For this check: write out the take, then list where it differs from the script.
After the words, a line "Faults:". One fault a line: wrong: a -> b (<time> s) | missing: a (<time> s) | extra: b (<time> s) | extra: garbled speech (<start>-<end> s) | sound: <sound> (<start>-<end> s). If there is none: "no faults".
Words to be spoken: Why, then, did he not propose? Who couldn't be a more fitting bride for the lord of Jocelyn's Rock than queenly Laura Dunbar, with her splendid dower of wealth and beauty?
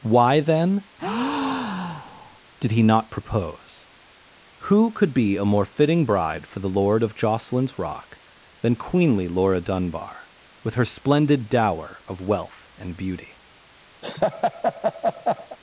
Why, then, did he not propose? Who could be a more fitting bride for the lord of Jocelyn's Rock than queenly Laura Dunbar, with her splendid dower of wealth and beauty?
Faults:
sound: breath (1.0-2.4 s)
wrong: couldn't -> could (4.9 s)
sound: laugh (14.0-15.6 s)